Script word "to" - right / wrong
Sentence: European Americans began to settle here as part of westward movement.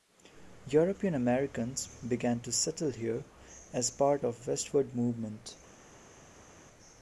right